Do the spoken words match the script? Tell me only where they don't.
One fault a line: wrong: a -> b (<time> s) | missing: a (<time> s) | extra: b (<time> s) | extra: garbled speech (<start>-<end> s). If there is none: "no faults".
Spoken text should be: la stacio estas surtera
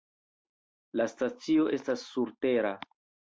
no faults